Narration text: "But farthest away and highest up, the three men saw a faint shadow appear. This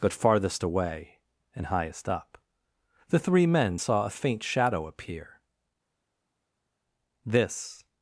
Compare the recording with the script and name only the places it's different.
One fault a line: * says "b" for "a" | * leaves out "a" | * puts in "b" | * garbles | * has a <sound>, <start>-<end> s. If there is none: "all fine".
all fine